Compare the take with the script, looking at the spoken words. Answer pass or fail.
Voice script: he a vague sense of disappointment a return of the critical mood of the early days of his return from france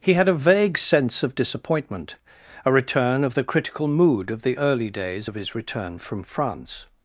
fail